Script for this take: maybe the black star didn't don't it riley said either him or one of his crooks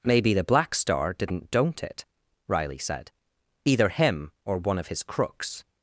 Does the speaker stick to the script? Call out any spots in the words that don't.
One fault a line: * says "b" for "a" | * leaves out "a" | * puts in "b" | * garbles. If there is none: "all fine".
all fine